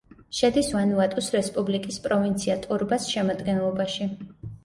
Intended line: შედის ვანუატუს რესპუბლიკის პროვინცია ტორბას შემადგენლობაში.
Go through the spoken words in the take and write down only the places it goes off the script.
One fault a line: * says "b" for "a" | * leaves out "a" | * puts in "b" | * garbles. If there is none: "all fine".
all fine